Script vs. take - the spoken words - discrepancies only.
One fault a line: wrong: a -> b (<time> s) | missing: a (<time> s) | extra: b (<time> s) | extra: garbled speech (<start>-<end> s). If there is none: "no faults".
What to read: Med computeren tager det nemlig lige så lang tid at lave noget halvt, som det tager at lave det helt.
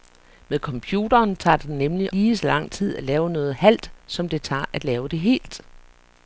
no faults